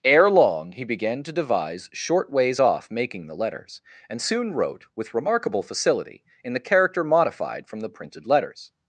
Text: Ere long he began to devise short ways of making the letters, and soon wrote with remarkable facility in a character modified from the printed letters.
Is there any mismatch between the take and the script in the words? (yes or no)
yes